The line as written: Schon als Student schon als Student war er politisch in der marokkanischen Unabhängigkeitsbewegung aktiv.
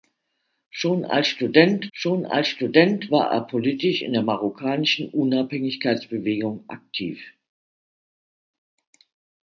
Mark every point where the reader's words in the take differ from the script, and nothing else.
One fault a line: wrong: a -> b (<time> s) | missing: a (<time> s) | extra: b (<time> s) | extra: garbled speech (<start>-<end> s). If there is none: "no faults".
no faults